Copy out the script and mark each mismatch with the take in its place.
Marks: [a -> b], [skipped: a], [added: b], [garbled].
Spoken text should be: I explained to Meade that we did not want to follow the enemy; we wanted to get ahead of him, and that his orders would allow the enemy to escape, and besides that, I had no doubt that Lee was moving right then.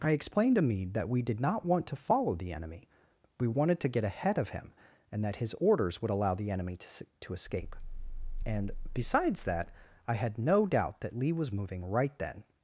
I explained to Meade that we did not want to follow the enemy; we wanted to get ahead of him, and that his orders would allow the enemy to [added: to] escape, and besides that, I had no doubt that Lee was moving right then.